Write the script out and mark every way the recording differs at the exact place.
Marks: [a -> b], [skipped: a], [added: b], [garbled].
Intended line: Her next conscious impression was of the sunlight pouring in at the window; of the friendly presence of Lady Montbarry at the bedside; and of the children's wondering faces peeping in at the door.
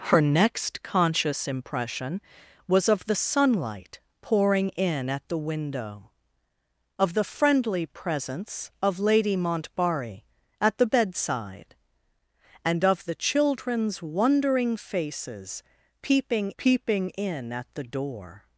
Her next conscious impression was of the sunlight pouring in at the window; of the friendly presence of Lady Montbarry at the bedside; and of the children's wondering faces peeping [added: peeping] in at the door.